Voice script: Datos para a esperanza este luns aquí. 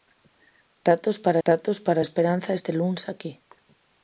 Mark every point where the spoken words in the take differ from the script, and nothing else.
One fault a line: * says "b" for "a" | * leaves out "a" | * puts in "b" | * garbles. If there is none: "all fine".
* puts in "datos para"